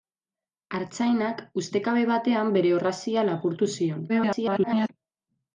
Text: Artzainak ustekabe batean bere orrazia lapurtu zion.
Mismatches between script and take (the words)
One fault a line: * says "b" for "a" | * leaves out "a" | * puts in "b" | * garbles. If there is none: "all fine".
* garbles